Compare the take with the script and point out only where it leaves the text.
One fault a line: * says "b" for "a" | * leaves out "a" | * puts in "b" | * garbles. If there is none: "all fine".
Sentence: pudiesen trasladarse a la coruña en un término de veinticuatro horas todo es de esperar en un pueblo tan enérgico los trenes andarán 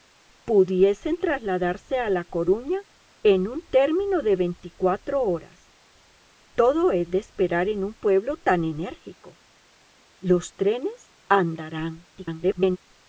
* garbles